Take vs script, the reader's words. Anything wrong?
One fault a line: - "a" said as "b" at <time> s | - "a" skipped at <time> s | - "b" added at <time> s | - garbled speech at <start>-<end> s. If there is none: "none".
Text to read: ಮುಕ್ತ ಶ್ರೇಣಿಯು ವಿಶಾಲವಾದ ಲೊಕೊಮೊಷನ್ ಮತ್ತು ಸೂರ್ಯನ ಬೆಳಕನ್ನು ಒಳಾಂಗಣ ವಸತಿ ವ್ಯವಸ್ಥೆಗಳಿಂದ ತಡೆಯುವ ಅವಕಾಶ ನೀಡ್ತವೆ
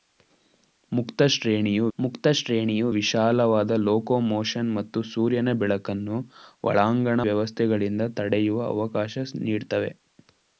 - "ಮುಕ್ತ ಶ್ರೇಣಿಯು" added at 2.0 s
- "ವಸತಿ" skipped at 7.2 s